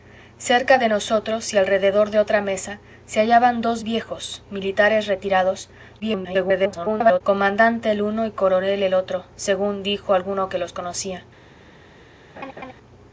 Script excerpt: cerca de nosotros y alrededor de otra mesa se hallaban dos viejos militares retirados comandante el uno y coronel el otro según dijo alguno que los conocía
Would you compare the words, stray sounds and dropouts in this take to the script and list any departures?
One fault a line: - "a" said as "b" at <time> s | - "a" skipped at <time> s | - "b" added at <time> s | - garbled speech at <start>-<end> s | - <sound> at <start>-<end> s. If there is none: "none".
- garbled speech at 6.0-7.2 s
- laugh at 12.4-12.7 s